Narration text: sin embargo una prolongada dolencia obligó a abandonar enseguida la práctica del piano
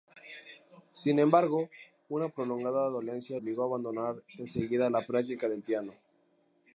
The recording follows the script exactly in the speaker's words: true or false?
true